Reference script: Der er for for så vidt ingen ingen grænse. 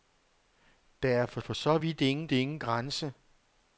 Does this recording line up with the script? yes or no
yes